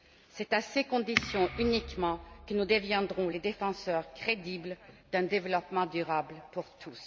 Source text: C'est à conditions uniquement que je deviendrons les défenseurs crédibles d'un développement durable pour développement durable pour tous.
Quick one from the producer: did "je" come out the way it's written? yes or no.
no